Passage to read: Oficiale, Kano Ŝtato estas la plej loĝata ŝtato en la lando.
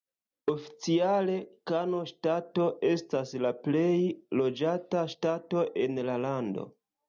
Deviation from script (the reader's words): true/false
false